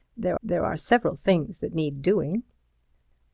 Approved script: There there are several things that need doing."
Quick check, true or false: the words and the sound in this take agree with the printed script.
true